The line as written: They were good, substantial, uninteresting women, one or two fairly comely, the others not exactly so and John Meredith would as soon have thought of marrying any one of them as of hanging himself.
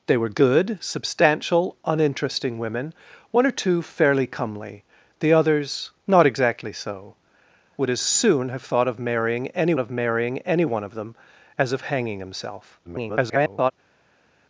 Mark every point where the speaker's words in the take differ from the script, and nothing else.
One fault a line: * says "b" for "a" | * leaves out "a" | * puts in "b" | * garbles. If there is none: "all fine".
* leaves out "and John Meredith"
* puts in "of marrying any"
* garbles